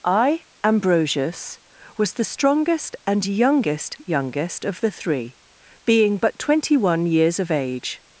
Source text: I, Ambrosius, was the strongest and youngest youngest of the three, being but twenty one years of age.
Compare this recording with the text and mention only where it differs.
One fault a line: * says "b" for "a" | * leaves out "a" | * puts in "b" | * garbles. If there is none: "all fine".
all fine